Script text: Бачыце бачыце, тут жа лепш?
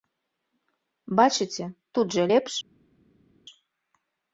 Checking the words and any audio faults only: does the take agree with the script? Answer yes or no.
no